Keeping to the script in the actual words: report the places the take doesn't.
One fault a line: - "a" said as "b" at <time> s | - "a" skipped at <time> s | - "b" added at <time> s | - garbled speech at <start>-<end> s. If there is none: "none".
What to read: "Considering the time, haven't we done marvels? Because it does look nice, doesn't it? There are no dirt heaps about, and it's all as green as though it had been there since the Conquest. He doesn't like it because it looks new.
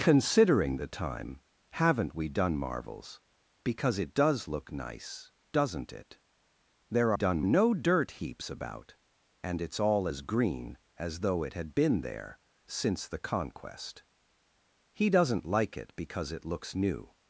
- "are" said as "done" at 7.1 s